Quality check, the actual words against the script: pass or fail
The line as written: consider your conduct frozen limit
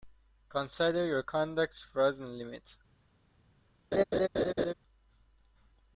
pass